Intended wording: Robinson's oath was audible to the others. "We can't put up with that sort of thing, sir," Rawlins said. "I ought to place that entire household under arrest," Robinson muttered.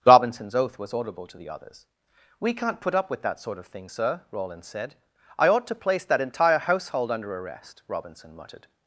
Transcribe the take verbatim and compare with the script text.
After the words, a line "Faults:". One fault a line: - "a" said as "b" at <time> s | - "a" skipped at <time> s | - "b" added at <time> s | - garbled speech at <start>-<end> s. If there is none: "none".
Robinson's oath was audible to the others. "We can't put up with that sort of thing, sir," Rawlins said. "I ought to place that entire household under arrest," Robinson muttered.
Faults:
none